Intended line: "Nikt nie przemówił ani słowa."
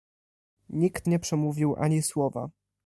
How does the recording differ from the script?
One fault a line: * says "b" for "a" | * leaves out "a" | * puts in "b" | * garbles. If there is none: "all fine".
all fine